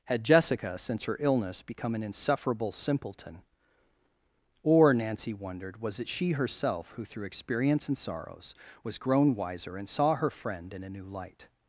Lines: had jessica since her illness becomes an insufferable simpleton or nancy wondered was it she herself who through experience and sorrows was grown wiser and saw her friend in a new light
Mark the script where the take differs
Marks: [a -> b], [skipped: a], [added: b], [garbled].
had jessica since her illness [becomes -> become] an insufferable simpleton or nancy wondered was it she herself who through experience and sorrows was grown wiser and saw her friend in a new light